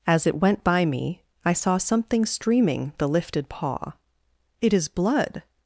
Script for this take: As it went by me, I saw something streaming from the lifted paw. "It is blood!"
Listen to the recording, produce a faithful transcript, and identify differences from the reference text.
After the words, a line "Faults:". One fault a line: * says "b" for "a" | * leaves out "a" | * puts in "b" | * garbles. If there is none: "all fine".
As it went by me, I saw something streaming the lifted paw. "It is blood!"
Faults:
* leaves out "from"